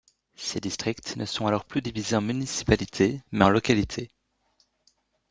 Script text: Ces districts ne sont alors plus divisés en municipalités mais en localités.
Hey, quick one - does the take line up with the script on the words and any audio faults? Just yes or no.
yes